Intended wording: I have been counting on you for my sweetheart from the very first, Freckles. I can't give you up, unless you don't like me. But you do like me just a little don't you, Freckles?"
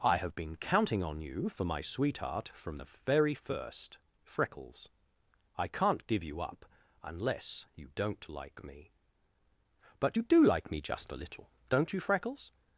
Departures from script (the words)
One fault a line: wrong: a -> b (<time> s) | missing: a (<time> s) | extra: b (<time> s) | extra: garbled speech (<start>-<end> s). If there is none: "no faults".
no faults